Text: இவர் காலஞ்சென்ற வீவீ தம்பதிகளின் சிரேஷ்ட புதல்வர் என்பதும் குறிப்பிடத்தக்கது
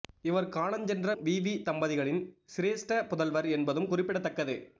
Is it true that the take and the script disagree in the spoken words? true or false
false